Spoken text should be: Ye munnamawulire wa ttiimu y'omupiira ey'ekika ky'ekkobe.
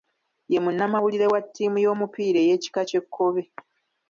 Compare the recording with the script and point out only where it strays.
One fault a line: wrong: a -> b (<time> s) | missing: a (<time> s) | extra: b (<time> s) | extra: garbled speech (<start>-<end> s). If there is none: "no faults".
no faults